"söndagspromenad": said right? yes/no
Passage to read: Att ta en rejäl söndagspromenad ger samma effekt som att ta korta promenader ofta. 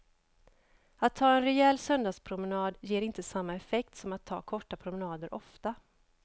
yes